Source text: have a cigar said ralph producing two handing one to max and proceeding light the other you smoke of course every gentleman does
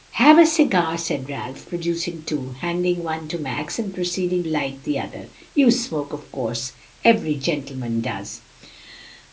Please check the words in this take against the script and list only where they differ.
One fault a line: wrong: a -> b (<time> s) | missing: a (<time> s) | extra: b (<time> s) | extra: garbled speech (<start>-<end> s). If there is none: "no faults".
no faults